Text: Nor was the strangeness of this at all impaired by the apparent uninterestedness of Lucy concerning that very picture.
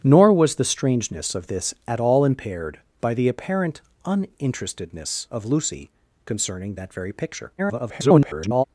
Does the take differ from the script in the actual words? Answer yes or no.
yes